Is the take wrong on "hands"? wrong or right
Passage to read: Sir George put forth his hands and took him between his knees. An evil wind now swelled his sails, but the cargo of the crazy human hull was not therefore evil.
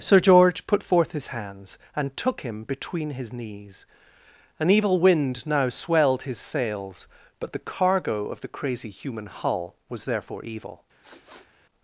right